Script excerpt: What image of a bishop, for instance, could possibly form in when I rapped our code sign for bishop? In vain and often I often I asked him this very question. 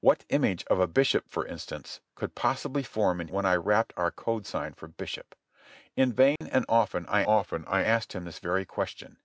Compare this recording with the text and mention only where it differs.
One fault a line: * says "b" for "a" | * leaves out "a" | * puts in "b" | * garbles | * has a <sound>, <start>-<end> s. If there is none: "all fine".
* has a dropout, 6.4-6.4 s